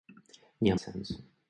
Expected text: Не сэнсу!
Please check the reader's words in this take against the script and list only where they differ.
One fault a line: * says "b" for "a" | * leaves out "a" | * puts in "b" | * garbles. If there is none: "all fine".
all fine